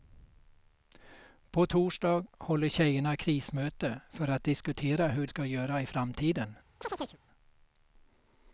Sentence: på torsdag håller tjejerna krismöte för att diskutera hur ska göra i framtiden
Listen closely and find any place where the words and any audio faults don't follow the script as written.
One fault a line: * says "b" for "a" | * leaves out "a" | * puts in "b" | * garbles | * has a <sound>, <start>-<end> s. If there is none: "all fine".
* has a chirp, 6.8-7.2 s